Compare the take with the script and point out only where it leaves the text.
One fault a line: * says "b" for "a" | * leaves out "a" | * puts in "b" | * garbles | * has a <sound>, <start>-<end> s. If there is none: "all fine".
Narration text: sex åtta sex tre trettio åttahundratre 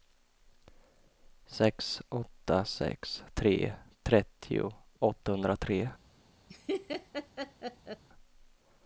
* has a laugh, 6.5-8.0 s